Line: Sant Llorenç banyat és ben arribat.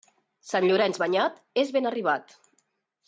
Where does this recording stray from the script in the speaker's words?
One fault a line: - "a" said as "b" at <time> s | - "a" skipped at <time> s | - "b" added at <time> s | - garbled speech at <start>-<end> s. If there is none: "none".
none